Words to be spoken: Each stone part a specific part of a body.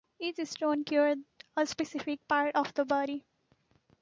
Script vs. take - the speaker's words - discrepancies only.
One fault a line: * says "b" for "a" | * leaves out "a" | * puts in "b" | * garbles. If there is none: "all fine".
* says "cured" for "part"
* says "the" for "a"